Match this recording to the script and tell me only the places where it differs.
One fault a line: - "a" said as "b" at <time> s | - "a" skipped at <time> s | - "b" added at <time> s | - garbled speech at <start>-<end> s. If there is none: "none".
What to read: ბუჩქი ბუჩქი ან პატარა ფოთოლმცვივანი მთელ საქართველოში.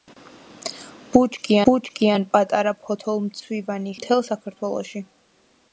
none